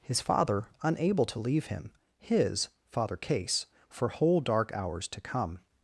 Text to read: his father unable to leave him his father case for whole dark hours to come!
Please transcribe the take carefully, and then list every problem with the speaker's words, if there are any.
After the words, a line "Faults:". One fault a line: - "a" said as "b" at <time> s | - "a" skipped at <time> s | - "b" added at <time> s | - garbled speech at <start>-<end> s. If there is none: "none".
his father unable to leave him his father case for whole dark hours to come!
Faults:
none